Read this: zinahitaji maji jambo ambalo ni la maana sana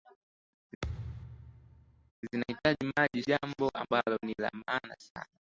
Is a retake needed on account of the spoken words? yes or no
no